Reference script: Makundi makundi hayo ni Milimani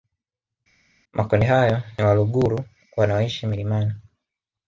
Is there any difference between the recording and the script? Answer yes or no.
yes